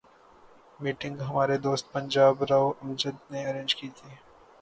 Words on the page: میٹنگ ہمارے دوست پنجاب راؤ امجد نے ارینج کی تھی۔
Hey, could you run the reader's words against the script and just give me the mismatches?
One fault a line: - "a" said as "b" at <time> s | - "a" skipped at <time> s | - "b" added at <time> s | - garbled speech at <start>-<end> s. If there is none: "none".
none